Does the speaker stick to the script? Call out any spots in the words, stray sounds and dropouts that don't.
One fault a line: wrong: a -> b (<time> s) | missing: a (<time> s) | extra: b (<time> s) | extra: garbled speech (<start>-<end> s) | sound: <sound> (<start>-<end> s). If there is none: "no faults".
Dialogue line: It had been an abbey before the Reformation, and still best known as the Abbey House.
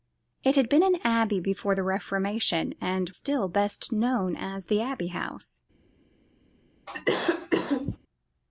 sound: cough (6.9-8.0 s)